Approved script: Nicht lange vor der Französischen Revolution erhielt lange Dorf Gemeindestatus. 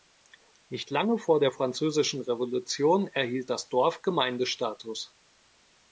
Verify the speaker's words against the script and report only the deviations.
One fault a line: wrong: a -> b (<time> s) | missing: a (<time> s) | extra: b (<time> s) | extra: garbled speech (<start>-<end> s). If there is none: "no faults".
wrong: lange -> das (3.5 s)